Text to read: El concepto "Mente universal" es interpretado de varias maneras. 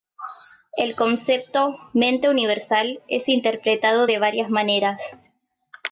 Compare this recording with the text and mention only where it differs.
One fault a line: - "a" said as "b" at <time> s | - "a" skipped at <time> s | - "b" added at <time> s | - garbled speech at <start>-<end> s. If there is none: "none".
none